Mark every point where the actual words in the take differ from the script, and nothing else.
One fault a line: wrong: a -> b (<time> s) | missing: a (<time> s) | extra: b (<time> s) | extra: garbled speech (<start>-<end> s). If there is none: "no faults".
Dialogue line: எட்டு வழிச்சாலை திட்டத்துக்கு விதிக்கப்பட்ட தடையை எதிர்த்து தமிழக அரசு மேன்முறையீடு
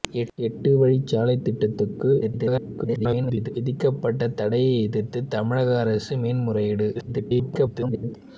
extra: garbled speech (2.2-3.5 s)
extra: garbled speech (6.9-8.2 s)